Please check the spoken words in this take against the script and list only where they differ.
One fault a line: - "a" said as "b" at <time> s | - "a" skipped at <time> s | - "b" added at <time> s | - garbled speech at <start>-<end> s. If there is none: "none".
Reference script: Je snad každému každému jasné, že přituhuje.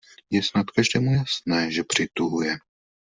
- "každému" skipped at 1.1 s